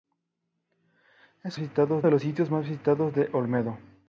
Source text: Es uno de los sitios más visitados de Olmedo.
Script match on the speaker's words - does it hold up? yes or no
no